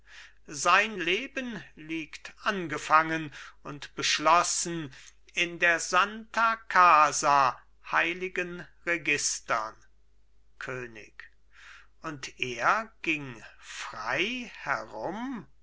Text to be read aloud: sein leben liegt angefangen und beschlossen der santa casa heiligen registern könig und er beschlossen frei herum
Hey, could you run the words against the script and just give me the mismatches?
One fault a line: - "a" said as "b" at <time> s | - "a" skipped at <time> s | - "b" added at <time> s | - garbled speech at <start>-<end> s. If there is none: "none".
- "in" added at 5.3 s
- "beschlossen" said as "ging" at 13.0 s